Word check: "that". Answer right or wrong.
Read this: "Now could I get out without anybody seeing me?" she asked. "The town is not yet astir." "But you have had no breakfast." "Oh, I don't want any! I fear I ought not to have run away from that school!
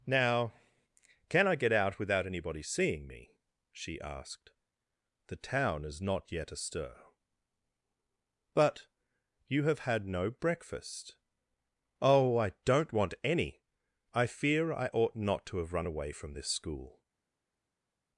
wrong